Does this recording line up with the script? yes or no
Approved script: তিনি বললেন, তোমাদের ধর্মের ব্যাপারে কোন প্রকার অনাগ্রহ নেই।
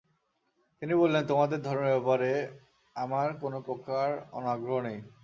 no